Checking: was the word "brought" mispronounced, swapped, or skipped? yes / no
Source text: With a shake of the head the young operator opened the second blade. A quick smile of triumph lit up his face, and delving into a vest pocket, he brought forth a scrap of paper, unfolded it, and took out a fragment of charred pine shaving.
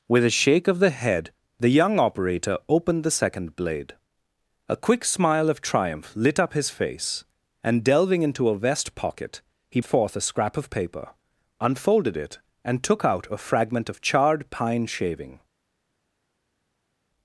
yes